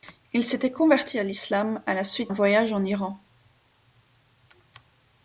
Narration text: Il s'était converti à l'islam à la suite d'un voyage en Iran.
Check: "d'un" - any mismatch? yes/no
yes